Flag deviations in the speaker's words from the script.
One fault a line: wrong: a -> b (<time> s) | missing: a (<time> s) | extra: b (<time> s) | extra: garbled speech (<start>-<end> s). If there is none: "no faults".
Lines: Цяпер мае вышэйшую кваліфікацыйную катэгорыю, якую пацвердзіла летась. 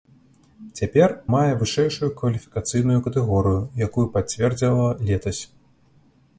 no faults